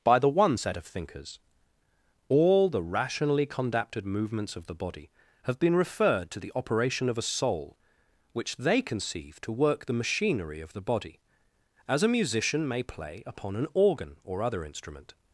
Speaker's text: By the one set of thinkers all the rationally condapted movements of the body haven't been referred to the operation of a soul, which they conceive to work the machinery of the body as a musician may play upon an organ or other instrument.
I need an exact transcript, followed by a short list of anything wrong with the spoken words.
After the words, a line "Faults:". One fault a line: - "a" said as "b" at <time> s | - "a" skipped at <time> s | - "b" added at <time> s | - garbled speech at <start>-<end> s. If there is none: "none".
By the one set of thinkers all the rationally condapted movements of the body have been referred to the operation of a soul, which they conceive to work the machinery of the body as a musician may play upon an organ or other instrument.
Faults:
- "haven't" said as "have" at 5.4 s